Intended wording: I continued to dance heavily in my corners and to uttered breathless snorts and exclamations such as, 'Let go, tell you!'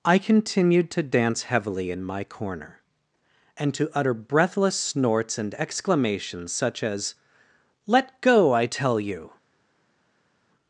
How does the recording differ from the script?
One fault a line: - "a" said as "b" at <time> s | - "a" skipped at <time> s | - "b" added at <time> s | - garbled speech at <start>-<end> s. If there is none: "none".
- "corners" said as "corner" at 2.2 s
- "uttered" said as "utter" at 3.9 s
- "I" added at 8.5 s